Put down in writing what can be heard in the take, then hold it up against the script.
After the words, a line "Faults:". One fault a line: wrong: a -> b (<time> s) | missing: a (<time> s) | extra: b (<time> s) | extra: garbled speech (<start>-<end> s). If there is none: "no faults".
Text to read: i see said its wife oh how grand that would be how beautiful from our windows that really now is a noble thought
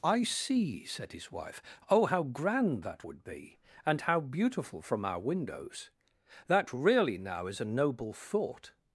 i see said his wife oh how grand that would be and how beautiful from our windows that really now is a noble thought
Faults:
wrong: its -> his (1.1 s)
extra: and (3.9 s)